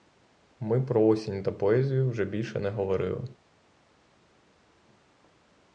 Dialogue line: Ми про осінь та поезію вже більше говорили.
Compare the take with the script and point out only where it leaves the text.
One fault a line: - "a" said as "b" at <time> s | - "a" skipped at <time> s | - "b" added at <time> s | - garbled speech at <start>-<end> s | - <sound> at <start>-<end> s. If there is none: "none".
- "не" added at 2.6 s